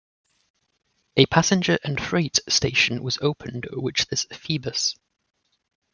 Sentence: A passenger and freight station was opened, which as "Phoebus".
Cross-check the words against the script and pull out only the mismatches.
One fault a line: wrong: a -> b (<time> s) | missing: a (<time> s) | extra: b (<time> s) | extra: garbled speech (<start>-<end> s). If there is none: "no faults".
no faults